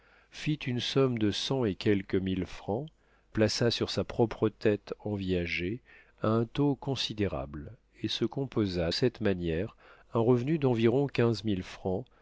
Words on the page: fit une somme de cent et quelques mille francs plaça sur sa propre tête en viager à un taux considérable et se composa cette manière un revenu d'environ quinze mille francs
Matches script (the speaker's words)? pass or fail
pass